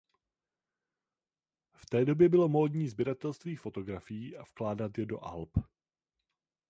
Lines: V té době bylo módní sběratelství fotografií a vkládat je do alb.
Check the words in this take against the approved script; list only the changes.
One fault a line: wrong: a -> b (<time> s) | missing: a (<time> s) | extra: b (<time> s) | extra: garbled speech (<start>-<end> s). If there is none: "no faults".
no faults